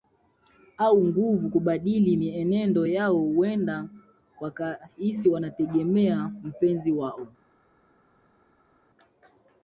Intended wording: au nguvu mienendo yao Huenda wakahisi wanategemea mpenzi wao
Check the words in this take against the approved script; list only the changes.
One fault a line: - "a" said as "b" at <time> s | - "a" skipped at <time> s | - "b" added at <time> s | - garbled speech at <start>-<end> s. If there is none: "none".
- "kubadili" added at 1.5 s